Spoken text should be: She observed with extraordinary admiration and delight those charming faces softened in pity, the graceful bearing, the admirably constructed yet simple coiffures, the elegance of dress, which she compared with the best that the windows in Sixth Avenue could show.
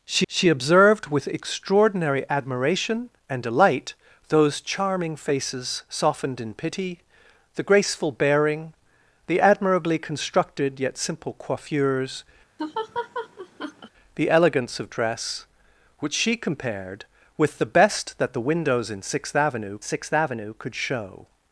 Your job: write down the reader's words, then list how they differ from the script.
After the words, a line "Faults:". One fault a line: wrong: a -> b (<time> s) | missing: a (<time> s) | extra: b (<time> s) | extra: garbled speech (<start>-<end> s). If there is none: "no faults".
She she observed with extraordinary admiration and delight those charming faces softened in pity, the graceful bearing, the admirably constructed yet simple coiffures, the elegance of dress, which she compared with the best that the windows in Sixth Avenue Sixth Avenue could show.
Faults:
extra: she (0.3 s)
extra: Sixth Avenue (19.8 s)